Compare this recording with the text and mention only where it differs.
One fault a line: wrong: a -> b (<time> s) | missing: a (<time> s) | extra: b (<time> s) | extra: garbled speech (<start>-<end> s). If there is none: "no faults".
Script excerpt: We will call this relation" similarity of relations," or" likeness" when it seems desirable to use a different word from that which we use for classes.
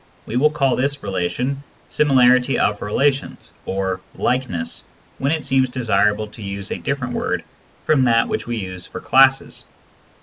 no faults